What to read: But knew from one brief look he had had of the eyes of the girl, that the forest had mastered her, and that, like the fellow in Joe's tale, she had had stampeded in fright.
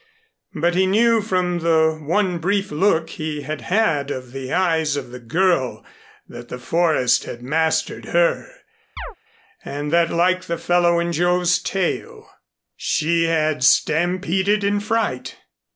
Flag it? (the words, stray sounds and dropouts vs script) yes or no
yes